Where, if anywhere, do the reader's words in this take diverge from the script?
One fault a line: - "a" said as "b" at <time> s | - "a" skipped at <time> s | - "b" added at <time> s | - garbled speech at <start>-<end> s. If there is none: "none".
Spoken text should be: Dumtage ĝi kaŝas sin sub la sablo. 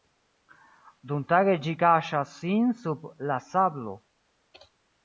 none